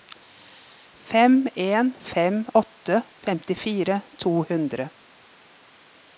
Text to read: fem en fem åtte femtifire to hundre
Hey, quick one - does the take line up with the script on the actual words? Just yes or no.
yes